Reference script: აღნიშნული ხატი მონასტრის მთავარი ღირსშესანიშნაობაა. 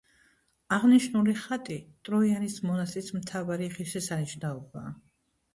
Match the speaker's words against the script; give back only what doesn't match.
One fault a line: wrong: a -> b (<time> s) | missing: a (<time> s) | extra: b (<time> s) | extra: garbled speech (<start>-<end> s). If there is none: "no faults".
extra: ტროიანის (2.1 s)